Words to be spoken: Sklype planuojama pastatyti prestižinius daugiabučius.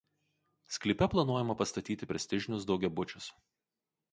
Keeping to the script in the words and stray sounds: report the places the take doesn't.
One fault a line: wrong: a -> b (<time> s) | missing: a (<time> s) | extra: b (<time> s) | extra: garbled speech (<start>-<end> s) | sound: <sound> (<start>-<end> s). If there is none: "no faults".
no faults